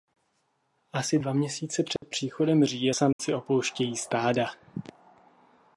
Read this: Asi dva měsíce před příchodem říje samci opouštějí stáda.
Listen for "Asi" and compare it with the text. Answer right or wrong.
right